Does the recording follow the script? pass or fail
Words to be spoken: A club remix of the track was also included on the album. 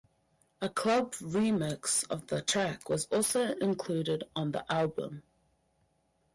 pass